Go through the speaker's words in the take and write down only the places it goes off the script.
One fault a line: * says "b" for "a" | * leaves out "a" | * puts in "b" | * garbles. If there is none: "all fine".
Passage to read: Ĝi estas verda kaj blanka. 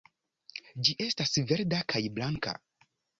all fine